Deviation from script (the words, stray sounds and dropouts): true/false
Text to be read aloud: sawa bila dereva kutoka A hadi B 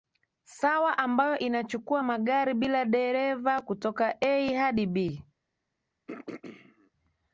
true